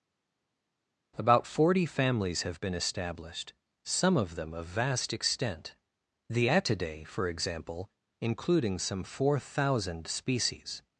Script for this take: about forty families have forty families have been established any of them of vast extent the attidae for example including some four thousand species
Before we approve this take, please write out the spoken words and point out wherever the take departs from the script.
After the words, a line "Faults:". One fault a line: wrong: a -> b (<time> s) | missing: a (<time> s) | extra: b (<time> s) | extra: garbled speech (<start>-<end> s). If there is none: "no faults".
about forty families have been established some of them of vast extent the attidae for example including some four thousand species
Faults:
missing: forty families have (2.6 s)
wrong: any -> some (3.8 s)